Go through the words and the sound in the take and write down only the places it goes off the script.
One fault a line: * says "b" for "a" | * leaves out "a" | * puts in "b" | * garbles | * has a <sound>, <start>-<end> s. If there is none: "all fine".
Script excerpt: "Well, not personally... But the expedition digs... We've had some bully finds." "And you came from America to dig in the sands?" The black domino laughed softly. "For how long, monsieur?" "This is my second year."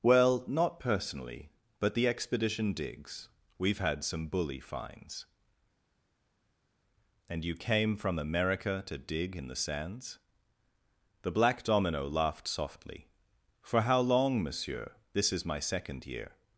all fine